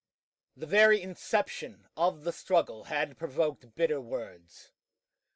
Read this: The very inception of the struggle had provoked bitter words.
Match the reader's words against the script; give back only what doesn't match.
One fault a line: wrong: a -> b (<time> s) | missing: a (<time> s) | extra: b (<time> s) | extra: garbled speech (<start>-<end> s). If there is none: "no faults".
no faults